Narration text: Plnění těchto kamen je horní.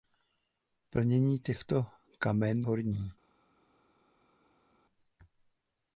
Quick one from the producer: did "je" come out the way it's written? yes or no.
no